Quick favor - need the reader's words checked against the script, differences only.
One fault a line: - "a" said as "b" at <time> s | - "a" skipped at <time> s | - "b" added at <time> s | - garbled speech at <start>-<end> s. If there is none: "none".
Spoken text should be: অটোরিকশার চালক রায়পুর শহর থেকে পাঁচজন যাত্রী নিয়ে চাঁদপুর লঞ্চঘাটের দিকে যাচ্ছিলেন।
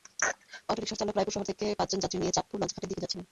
none